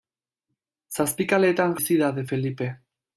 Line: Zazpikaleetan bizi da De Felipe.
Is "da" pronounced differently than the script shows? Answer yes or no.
no